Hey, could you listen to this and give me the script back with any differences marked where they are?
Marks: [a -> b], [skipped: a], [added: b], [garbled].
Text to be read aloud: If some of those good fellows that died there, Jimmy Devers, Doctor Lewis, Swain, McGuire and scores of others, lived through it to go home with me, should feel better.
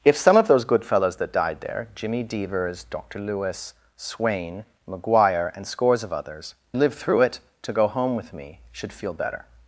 If some of those good fellows that died there, Jimmy Devers, Doctor Lewis, Swain, McGuire and scores of others, lived through it to go home with me, should feel better.